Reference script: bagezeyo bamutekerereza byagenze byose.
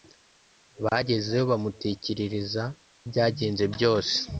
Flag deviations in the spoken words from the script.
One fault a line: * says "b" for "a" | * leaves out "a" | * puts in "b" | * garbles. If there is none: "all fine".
all fine